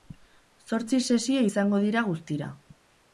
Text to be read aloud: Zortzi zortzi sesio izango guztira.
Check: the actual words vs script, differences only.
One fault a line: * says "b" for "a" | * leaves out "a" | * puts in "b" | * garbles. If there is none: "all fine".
* leaves out "zortzi"
* puts in "dira"